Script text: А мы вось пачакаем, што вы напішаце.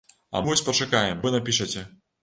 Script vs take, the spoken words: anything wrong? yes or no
yes